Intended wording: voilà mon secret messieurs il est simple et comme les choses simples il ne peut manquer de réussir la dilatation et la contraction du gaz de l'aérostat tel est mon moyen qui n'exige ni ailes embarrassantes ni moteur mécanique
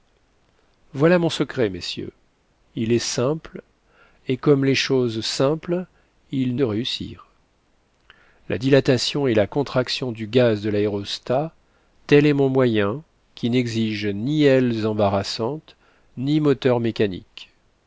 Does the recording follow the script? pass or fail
fail